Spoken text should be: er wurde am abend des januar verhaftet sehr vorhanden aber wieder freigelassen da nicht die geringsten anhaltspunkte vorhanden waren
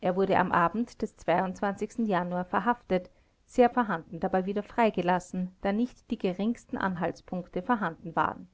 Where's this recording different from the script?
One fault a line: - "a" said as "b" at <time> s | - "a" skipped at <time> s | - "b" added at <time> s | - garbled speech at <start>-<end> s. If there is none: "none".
none